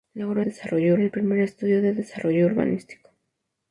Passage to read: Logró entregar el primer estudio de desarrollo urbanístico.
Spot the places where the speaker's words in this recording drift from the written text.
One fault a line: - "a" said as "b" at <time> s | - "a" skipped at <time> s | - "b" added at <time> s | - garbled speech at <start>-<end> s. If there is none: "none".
- "entregar" said as "desarrollo" at 0.4 s